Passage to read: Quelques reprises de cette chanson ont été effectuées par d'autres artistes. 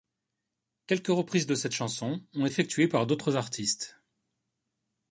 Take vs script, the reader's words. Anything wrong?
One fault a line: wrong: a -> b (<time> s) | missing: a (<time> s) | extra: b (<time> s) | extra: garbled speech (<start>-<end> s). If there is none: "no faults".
missing: été (2.5 s)